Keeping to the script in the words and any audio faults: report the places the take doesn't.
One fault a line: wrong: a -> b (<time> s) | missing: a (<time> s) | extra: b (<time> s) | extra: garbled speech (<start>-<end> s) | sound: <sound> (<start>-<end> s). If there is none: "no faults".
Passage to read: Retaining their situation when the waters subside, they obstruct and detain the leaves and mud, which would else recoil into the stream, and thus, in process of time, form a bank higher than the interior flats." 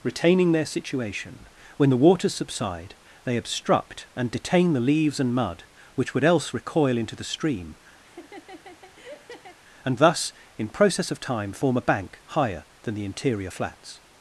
sound: laugh (8.0-9.6 s)